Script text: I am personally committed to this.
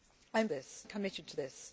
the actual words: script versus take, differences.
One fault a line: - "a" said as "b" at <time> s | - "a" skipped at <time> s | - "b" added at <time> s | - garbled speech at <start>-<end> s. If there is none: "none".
- "personally" said as "this" at 0.5 s